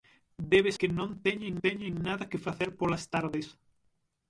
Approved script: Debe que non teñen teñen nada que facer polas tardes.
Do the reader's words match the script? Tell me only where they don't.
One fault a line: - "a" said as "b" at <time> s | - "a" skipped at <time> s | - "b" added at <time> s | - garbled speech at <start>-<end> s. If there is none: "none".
none